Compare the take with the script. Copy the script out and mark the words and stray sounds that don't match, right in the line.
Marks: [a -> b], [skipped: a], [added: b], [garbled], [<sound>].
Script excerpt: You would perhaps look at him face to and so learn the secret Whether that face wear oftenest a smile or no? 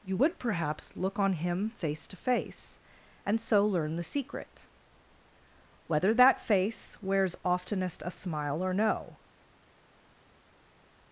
You would perhaps look [at -> on] him face to [added: face] and so learn the secret Whether that face [wear -> wears] oftenest a smile or no?